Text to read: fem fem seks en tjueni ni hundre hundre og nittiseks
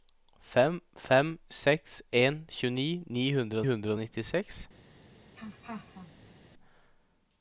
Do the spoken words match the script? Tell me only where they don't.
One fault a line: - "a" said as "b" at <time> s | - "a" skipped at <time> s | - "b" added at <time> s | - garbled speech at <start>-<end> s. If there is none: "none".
none